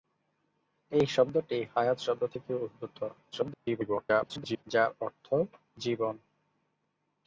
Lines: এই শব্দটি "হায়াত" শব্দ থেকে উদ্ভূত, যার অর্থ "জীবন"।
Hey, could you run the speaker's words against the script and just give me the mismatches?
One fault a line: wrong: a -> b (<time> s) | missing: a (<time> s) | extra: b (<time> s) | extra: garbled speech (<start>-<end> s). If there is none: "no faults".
extra: garbled speech (3.3-4.6 s)